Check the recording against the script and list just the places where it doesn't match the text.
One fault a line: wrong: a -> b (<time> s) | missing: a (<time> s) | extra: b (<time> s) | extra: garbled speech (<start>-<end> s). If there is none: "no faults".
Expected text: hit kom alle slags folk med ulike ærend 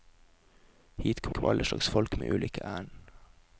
extra: kom (1.3 s)